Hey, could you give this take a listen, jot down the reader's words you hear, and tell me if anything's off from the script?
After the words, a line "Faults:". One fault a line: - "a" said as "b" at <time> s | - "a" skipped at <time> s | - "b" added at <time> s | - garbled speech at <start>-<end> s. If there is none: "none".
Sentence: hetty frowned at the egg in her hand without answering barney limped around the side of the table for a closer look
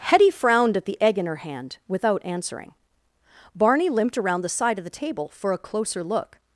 hetty frowned at the egg in her hand without answering barney limped around the side of the table for a closer look
Faults:
none